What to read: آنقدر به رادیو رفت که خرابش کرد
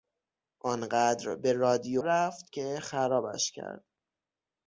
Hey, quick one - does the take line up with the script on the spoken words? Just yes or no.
yes